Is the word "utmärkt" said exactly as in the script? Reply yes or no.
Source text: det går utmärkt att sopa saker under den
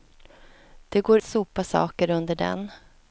no